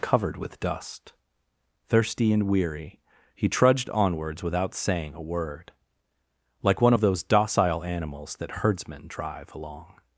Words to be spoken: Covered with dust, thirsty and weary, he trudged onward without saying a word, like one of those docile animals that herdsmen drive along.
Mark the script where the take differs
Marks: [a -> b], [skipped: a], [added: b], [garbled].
Covered with dust, thirsty and weary, he trudged [onward -> onwards] without saying a word, like one of those docile animals that herdsmen drive along.